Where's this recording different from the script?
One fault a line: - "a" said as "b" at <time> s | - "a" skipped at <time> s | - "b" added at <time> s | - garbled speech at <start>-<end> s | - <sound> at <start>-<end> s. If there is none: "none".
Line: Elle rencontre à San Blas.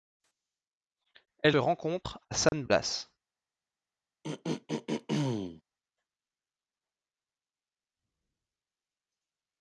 - dropout at 2.5-2.5 s
- throat clearing at 4.2-5.6 s